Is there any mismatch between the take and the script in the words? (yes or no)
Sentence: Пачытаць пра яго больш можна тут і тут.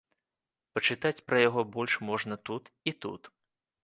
no